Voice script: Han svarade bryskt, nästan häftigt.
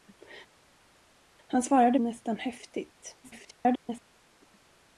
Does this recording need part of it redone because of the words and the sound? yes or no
yes